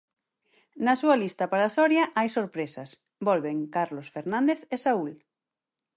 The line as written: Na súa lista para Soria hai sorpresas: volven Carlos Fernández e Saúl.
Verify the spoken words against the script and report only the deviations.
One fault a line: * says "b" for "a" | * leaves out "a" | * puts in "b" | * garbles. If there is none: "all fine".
all fine